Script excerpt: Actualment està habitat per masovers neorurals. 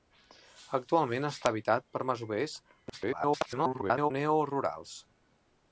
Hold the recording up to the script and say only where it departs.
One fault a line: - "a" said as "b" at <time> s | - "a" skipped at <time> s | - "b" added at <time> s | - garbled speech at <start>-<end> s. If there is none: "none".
- garbled speech at 2.9-4.1 s